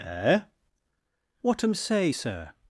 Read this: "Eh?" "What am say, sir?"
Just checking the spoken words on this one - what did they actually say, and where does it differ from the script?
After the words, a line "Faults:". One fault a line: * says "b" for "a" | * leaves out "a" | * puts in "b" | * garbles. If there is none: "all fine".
"Eh?" "What am say, sir?"
Faults:
all fine